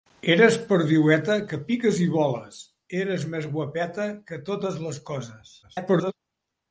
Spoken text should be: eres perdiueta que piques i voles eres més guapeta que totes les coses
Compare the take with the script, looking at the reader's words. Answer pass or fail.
fail